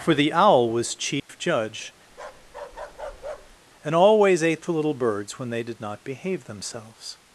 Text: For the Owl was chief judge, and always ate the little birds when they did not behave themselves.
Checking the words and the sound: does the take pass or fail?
fail